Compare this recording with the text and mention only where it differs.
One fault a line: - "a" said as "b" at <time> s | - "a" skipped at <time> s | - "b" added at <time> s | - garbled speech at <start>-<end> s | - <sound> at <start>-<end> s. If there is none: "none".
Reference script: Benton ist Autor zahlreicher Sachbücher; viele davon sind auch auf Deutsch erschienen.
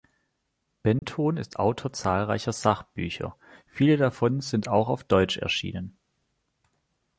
- dropout at 1.0-1.0 s